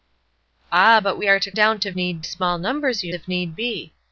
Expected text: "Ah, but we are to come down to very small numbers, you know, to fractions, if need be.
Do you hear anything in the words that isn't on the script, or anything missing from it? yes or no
yes